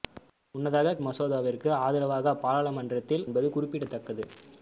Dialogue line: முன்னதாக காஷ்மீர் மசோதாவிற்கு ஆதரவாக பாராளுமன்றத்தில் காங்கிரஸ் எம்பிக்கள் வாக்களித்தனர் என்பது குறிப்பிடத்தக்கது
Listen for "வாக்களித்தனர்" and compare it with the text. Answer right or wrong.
wrong